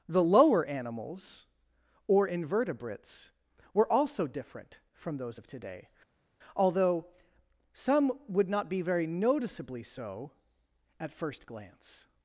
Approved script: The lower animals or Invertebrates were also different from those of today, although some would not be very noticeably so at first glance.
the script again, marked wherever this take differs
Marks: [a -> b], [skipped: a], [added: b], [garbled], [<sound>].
The lower animals or Invertebrates were also different from those of today, although some would not be very noticeably so at first glance.